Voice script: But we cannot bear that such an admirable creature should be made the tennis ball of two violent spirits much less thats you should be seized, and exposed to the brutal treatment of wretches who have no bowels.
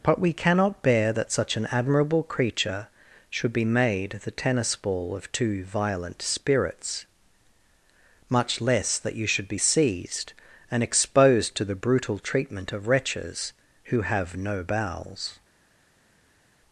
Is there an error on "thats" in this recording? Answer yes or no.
yes